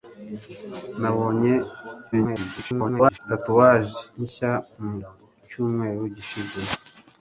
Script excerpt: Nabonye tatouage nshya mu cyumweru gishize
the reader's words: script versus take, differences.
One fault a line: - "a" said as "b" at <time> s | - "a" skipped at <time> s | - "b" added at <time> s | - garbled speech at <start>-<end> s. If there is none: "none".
- garbled speech at 2.1-3.2 s